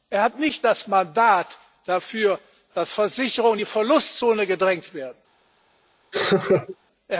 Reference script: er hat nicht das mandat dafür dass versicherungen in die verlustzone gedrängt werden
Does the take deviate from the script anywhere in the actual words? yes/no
no